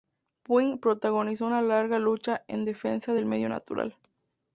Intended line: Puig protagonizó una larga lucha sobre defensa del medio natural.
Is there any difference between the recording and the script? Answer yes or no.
yes